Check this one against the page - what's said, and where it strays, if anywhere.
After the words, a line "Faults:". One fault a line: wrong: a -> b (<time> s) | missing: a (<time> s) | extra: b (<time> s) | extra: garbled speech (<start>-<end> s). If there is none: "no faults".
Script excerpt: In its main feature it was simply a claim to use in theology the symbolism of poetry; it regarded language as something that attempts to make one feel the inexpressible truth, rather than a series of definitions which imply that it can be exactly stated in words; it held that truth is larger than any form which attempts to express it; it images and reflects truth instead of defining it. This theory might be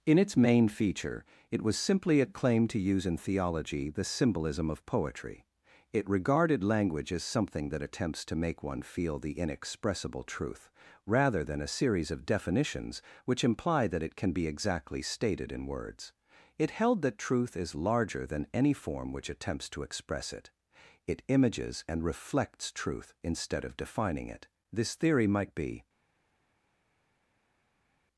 In its main feature it was simply a claim to use in theology the symbolism of poetry; it regarded language as something that attempts to make one feel the inexpressible truth, rather than a series of definitions which imply that it can be exactly stated in words; it held that truth is larger than any form which attempts to express it; it images and reflects truth instead of defining it. This theory might be
Faults:
no faults